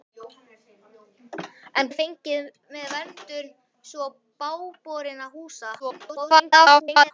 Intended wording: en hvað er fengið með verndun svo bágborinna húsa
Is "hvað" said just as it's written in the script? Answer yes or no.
no